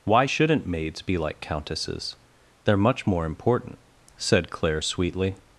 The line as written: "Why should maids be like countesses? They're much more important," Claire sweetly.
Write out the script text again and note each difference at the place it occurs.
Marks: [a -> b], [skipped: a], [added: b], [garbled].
"Why [should -> shouldn't] maids be like countesses? They're much more important," [added: said] Claire sweetly.